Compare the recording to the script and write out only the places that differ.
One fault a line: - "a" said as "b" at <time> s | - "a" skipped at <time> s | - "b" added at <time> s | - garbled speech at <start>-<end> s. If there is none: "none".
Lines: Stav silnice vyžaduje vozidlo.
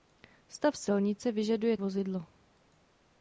none